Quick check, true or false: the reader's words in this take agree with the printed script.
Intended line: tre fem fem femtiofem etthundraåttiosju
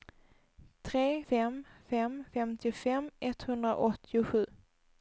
true